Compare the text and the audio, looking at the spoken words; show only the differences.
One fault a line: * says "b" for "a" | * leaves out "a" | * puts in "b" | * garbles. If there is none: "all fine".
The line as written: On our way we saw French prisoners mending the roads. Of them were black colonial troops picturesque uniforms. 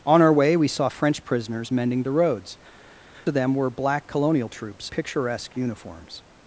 all fine